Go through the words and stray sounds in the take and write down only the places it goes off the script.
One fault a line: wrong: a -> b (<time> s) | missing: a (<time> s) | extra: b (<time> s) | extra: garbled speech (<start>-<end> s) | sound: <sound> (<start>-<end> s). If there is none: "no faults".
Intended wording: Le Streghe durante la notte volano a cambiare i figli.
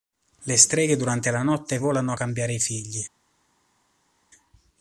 no faults